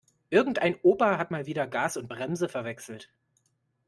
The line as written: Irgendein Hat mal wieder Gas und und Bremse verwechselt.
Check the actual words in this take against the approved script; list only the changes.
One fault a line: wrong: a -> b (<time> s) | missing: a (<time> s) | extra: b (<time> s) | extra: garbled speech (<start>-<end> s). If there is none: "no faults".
extra: Opa (0.8 s)
missing: und (2.1 s)